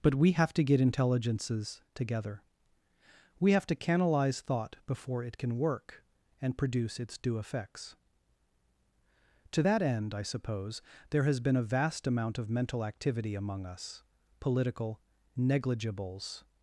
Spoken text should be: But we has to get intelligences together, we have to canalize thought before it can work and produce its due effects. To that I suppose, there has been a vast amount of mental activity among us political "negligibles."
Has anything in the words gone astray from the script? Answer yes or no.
yes